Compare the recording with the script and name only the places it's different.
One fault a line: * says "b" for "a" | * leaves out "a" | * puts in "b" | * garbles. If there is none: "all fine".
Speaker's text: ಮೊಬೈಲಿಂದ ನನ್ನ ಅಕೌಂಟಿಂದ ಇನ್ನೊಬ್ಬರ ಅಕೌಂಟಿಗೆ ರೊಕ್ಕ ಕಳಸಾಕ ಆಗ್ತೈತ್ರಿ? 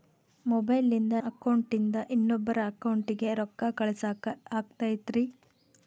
* leaves out "ನನ್ನ"